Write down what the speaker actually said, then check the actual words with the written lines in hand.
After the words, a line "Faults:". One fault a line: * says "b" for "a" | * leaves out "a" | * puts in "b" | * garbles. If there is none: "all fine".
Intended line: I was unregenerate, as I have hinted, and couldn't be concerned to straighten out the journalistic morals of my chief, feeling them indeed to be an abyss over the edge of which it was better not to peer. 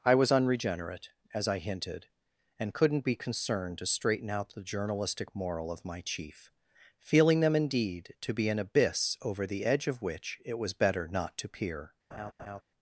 I was unregenerate, as I hinted, and couldn't be concerned to straighten out the journalistic moral of my chief, feeling them indeed to be an abyss over the edge of which it was better not to peer.
Faults:
* leaves out "have"
* says "moral" for "morals"